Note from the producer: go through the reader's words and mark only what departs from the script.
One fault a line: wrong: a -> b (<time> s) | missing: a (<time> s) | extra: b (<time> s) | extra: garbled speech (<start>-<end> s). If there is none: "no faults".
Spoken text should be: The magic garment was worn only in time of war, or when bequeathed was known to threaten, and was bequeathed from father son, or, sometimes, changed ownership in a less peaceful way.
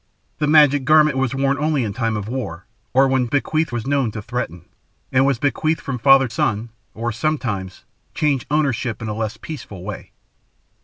no faults